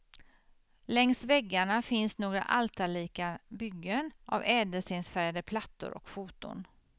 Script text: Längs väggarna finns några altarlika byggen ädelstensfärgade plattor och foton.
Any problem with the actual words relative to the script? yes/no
yes